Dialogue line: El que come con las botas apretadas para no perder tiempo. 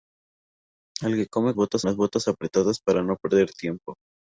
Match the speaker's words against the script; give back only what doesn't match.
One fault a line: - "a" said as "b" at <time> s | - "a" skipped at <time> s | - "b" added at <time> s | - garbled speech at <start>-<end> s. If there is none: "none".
- "con" said as "botas" at 1.5 s